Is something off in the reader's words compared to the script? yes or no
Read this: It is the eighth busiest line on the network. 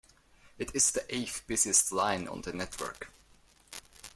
no